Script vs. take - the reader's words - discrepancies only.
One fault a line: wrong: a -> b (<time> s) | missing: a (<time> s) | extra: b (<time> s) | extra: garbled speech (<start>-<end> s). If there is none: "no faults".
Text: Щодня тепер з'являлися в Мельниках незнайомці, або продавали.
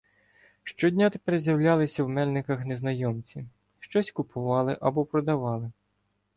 extra: щось купували (3.8 s)